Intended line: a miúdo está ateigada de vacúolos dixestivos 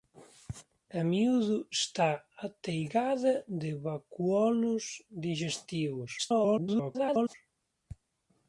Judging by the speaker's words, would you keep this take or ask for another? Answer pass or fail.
fail